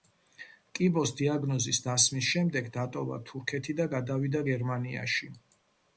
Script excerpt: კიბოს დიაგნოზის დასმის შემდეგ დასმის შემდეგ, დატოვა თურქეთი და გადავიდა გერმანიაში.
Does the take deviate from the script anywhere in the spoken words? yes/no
yes